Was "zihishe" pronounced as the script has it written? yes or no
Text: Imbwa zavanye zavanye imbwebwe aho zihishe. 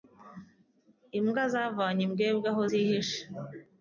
yes